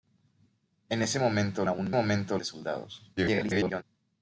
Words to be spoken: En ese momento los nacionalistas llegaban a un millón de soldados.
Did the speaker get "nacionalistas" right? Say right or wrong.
wrong